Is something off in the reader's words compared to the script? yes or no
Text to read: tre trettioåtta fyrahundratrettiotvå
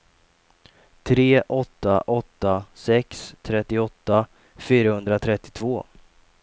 yes